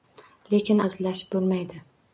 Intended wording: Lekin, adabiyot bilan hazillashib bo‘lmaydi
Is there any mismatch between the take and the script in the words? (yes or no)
yes